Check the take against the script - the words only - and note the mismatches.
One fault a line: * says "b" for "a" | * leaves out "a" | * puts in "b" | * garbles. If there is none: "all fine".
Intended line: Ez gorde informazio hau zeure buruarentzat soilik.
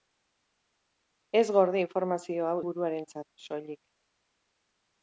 * leaves out "zeure"